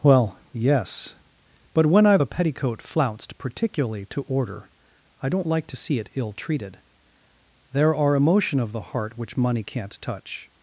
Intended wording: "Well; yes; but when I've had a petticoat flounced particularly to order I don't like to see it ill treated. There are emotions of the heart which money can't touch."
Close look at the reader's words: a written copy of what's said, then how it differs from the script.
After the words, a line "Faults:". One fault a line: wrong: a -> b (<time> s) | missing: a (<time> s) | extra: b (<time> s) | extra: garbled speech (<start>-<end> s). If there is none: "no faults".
"Well; yes; but when I've a petticoat flounced particularly to order I don't like to see it ill treated. There are emotion of the heart which money can't touch."
Faults:
missing: had (2.2 s)
wrong: emotions -> emotion (8.1 s)